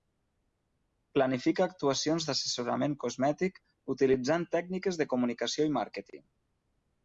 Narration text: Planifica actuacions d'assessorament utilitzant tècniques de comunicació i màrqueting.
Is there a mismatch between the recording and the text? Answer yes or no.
yes